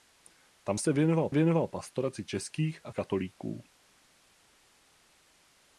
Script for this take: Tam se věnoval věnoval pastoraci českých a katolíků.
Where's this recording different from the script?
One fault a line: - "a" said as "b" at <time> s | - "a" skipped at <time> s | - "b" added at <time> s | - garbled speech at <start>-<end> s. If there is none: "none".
none